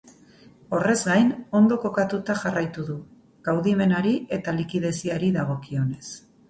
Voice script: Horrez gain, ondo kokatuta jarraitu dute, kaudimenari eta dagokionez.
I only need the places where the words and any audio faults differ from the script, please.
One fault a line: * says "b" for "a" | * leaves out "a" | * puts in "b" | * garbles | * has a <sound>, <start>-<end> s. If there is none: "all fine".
* says "du" for "dute"
* puts in "likideziari"